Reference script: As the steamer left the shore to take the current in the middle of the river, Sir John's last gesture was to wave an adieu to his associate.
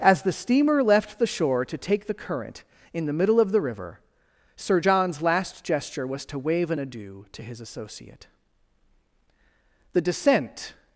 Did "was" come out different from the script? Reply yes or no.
no